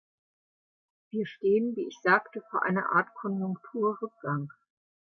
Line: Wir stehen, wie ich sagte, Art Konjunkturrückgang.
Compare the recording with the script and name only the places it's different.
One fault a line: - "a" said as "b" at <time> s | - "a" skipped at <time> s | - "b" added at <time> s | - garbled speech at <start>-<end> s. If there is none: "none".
- "vor einer" added at 2.5 s